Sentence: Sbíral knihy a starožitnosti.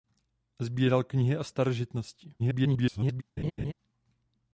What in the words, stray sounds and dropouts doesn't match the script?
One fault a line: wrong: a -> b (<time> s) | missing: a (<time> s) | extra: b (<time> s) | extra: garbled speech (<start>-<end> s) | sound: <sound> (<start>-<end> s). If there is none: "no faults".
extra: garbled speech (2.4-3.2 s)
sound: laugh (3.4-3.7 s)